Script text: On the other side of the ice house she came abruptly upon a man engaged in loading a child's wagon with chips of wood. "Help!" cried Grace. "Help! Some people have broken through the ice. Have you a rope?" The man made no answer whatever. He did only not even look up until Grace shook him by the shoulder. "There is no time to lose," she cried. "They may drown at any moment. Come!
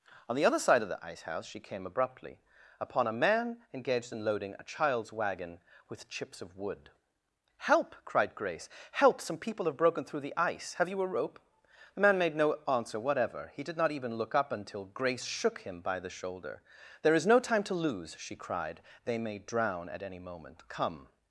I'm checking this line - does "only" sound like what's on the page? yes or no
no